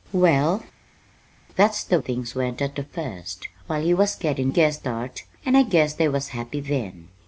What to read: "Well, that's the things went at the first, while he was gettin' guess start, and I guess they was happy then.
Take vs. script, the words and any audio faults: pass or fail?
pass